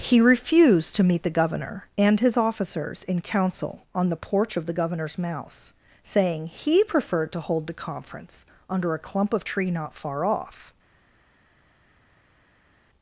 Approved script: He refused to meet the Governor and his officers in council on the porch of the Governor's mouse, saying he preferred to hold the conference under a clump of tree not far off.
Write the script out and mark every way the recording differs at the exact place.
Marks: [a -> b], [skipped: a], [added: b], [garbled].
He refused to meet the Governor and his officers in council on the porch of the Governor's mouse, saying he preferred to hold the conference under a clump of tree not far off.